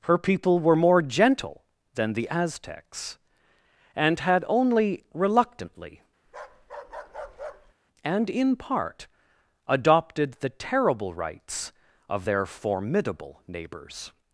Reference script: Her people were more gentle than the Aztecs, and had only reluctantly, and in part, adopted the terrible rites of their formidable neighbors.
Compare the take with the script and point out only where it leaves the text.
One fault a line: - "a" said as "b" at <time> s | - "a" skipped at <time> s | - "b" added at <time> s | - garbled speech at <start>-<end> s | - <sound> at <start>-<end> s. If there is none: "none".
- bark at 6.3-7.7 s